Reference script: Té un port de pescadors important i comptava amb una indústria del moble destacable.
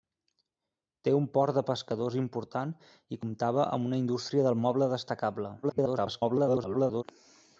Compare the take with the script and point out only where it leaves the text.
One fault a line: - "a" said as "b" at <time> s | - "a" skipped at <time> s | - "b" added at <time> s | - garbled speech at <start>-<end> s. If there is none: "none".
- garbled speech at 5.6-7.0 s